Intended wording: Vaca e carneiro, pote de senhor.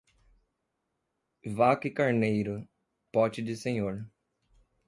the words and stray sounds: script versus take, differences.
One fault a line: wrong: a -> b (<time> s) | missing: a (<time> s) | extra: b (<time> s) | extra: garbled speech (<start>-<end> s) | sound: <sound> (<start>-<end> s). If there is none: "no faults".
no faults